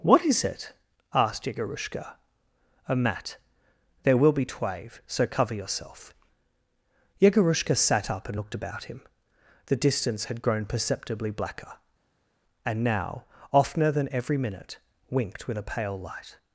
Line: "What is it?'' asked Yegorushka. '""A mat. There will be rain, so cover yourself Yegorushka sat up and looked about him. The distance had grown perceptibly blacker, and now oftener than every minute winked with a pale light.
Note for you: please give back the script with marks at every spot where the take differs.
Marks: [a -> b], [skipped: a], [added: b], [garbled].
"What is it?'' asked Yegorushka. '""A mat. There will be [rain, -> twave] so cover yourself Yegorushka sat up and looked about him. The distance had grown perceptibly blacker, and now oftener than every minute winked with a pale light.